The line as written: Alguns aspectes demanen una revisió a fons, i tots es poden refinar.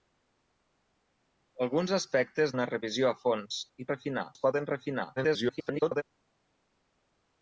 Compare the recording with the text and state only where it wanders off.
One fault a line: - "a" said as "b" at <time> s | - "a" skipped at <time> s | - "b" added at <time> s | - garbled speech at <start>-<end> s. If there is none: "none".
- "demanen" skipped at 2.5 s
- "tots" said as "refinar" at 3.9 s
- garbled speech at 5.2-6.0 s